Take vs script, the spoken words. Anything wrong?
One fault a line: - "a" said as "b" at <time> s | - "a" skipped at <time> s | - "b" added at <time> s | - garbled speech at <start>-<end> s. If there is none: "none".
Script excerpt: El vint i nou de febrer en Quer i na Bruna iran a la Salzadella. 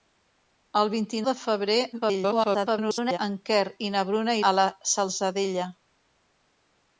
- "nou" skipped at 1.2 s
- garbled speech at 1.9-3.2 s
- "iran" skipped at 4.4 s